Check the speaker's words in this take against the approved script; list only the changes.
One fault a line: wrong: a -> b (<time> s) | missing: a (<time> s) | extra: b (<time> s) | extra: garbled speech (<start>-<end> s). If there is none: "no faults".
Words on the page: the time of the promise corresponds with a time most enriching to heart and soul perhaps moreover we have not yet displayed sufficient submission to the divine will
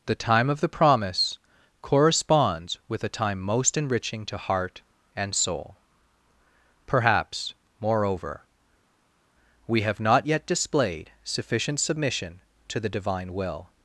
no faults